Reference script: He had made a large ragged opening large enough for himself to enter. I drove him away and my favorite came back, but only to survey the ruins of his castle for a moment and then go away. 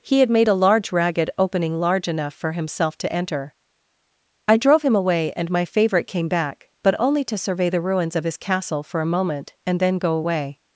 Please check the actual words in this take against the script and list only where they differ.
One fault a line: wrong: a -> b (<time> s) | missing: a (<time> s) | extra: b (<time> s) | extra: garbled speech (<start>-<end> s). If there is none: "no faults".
no faults